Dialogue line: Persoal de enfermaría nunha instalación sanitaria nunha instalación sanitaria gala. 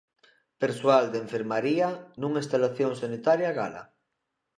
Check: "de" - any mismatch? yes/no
no